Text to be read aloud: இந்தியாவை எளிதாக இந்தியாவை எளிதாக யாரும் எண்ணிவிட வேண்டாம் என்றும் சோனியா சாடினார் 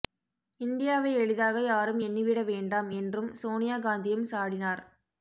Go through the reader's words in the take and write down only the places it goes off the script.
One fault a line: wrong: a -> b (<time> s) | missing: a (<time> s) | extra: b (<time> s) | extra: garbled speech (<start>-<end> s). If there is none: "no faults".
missing: இந்தியாவை எளிதாக (1.6 s)
extra: காந்தியும் (3.8 s)